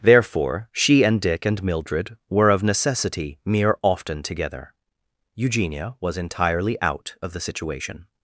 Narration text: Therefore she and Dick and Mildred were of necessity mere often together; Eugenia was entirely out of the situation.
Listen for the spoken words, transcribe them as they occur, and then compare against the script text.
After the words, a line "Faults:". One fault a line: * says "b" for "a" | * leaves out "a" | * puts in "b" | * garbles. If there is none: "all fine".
Therefore she and Dick and Mildred were of necessity mere often together; Eugenia was entirely out of the situation.
Faults:
all fine